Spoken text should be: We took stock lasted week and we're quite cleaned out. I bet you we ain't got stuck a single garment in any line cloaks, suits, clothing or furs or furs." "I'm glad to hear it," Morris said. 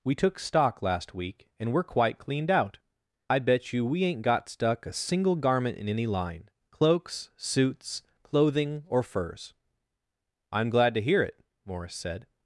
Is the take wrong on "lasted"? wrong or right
wrong